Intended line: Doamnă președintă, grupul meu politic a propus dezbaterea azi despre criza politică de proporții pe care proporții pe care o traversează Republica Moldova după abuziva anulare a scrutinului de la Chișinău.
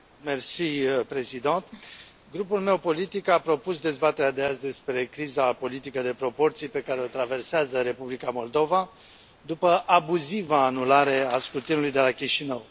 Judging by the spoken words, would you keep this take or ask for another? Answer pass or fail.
fail